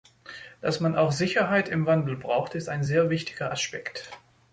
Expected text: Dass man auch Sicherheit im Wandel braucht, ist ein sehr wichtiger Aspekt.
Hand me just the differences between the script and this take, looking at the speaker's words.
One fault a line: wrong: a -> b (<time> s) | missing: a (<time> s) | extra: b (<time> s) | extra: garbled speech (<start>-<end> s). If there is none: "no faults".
no faults